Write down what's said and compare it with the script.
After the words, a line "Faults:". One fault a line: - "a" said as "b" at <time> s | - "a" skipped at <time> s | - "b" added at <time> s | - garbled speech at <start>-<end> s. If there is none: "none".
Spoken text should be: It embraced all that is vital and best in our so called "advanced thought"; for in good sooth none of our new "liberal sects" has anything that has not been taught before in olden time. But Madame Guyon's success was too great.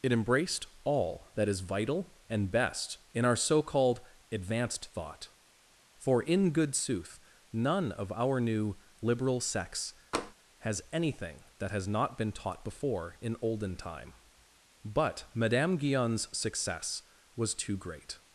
It embraced all that is vital and best in our so called "advanced thought"; for in good sooth none of our new "liberal sects" has anything that has not been taught before in olden time. But Madame Guyon's success was too great.
Faults:
none